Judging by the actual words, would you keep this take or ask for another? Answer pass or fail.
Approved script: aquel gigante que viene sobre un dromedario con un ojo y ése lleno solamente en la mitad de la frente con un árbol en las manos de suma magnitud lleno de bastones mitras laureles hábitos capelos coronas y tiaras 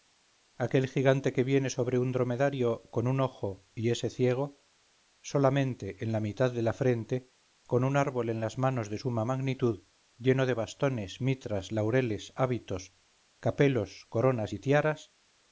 fail